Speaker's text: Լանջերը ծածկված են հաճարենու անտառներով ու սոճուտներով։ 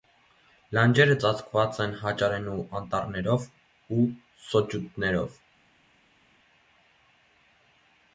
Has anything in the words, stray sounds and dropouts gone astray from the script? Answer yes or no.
no